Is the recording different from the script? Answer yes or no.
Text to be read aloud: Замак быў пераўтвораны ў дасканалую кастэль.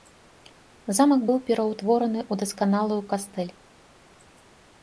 no